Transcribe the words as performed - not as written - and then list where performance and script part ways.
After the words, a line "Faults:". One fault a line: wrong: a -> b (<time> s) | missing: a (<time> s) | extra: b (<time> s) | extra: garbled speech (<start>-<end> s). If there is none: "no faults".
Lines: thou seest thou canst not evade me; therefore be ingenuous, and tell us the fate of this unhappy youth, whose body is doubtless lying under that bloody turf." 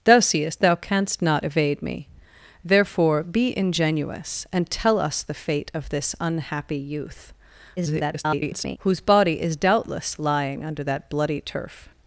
thou seest thou canst not evade me; therefore be ingenuous, and tell us the fate of this unhappy youth, [garbled] whose body is doubtless lying under that bloody turf."
Faults:
extra: garbled speech (7.8-8.8 s)